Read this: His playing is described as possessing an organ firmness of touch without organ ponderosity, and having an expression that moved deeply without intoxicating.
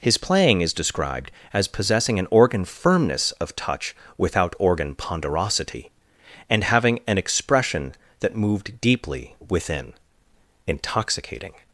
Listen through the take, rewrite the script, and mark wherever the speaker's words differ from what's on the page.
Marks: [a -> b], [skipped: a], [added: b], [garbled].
His playing is described as possessing an organ firmness of touch without organ ponderosity, and having an expression that moved deeply [without -> within] intoxicating.